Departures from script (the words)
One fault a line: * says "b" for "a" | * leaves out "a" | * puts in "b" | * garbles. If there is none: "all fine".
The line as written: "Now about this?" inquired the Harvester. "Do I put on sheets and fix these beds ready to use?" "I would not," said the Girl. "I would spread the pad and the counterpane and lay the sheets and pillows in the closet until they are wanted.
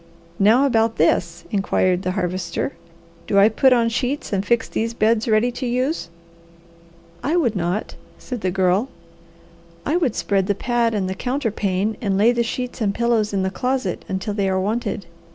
all fine